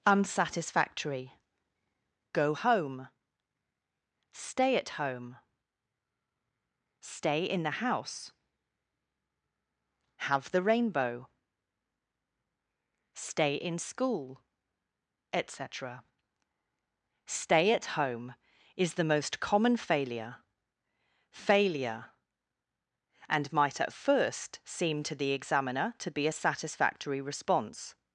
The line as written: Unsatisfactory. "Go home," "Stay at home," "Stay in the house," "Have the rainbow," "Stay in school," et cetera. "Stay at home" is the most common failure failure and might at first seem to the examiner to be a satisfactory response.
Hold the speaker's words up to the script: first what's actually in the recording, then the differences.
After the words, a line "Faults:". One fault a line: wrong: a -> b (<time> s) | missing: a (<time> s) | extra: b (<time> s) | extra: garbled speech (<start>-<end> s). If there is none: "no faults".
Unsatisfactory. "Go home," "Stay at home," "Stay in the house," "Have the rainbow," "Stay in school," et cetera. "Stay at home" is the most common failure failure and might at first seem to the examiner to be a satisfactory response.
Faults:
no faults